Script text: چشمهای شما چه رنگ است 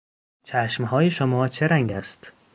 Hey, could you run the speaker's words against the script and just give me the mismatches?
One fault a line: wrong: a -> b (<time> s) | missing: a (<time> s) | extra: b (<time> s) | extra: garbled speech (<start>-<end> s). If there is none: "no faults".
no faults